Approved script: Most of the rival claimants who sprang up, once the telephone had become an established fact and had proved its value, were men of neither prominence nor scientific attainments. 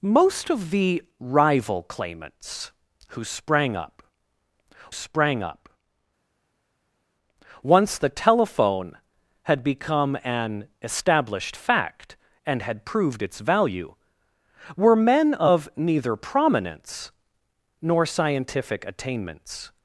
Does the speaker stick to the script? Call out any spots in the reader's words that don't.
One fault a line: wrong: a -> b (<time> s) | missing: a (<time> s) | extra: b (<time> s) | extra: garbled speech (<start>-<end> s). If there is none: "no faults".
extra: sprang up (4.9 s)